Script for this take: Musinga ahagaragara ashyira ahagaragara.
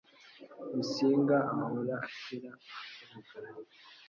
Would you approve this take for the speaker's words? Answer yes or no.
no